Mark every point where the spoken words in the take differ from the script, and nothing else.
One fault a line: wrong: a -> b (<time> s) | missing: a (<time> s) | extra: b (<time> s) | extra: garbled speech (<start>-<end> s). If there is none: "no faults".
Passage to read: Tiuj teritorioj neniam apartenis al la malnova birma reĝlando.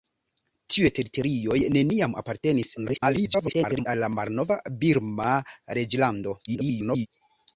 extra: garbled speech (2.8-3.9 s)
extra: garbled speech (6.5-7.1 s)